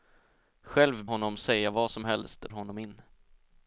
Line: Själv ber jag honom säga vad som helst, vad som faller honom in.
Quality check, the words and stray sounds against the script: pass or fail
fail